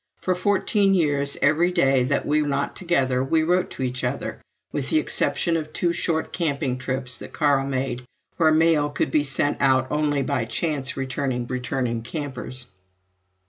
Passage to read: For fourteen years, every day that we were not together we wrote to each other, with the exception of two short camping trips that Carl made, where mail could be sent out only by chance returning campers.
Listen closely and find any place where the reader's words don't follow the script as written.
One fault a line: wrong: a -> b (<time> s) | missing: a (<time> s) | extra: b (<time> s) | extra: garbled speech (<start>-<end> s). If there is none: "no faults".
missing: were (2.4 s)
extra: returning (11.5 s)